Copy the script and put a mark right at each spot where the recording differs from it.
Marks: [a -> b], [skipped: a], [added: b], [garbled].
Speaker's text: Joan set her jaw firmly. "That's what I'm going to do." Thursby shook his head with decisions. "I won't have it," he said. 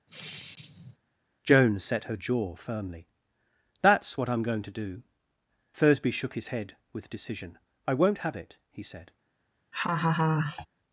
Joan set her jaw firmly. "That's what I'm going to do." Thursby shook his head with [decisions. -> decision] "I won't have it," he said.